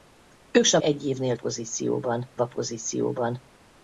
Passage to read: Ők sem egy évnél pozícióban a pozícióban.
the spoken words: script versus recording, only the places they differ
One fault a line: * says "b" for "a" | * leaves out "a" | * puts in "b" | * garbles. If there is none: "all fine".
all fine